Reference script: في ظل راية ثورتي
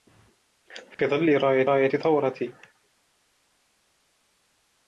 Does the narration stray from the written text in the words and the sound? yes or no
yes